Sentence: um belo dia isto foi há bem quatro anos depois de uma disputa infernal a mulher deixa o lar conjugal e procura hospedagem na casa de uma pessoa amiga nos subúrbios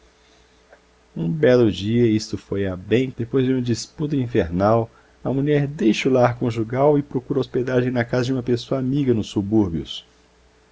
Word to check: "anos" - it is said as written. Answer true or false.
false